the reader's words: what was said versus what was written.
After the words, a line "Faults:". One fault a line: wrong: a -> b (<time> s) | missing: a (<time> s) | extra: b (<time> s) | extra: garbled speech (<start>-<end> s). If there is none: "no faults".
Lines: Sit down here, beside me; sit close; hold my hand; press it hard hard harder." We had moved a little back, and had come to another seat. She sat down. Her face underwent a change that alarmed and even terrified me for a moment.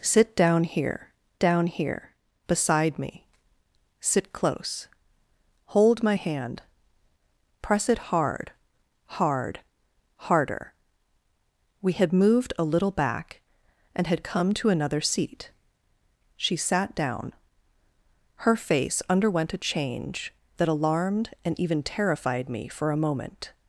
Sit down here down here, beside me; sit close; hold my hand; press it hard hard harder." We had moved a little back, and had come to another seat. She sat down. Her face underwent a change that alarmed and even terrified me for a moment.
Faults:
extra: down here (1.4 s)